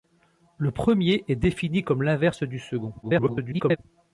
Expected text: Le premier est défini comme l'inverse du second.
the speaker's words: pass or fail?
fail